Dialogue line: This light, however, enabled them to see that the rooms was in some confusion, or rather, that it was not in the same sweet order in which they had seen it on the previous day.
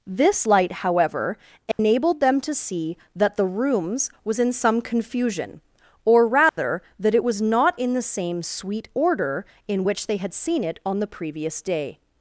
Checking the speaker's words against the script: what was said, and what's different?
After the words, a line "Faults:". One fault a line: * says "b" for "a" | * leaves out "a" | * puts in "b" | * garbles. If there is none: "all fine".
This light, however, enabled them to see that the rooms was in some confusion, or rather, that it was not in the same sweet order in which they had seen it on the previous day.
Faults:
all fine